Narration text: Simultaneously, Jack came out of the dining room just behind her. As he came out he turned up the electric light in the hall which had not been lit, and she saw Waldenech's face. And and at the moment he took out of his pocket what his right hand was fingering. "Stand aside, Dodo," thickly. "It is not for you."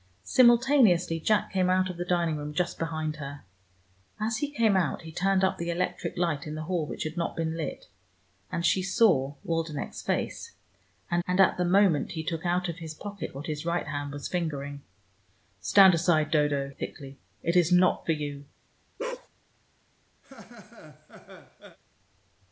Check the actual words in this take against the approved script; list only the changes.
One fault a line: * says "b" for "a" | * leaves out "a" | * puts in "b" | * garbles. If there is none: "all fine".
all fine